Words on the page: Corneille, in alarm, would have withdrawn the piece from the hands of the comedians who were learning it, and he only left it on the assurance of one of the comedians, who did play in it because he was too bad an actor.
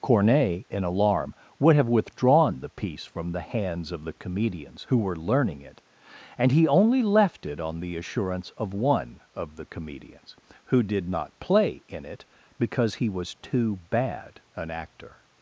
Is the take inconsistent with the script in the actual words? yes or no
yes